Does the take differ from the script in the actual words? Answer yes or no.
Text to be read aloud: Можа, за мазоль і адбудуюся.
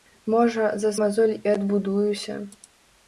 no